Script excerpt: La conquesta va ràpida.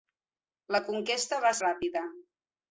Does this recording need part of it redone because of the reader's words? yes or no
no